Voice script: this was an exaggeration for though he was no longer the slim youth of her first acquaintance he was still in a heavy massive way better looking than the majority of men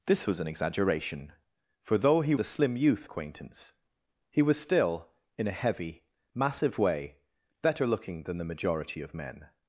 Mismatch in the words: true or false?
true